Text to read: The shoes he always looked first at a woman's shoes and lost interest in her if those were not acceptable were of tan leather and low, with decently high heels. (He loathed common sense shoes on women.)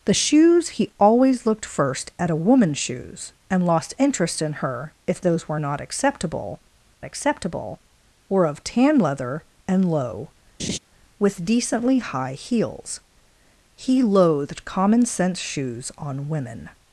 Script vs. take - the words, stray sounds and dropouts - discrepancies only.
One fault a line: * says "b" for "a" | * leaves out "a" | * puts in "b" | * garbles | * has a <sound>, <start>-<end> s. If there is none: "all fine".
* puts in "acceptable"
* has a laugh, 10.6-10.8 s